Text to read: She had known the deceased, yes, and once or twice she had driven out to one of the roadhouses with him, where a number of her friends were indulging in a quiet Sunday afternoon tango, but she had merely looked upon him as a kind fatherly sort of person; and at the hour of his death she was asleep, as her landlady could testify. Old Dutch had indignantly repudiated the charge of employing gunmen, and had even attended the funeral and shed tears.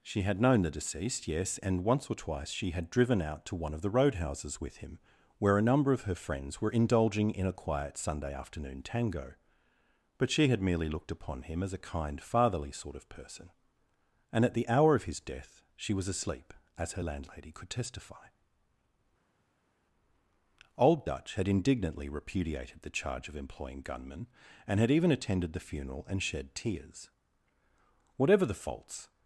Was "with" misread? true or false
false